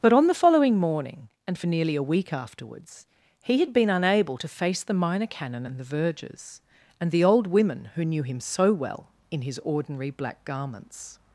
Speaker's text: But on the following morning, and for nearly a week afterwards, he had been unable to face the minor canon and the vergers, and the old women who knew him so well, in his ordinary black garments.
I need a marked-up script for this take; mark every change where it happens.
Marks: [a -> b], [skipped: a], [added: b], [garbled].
But on the following morning, and for nearly a week afterwards, he had been unable to face the minor canon and the vergers, and the old women who knew him so well, in his ordinary black garments.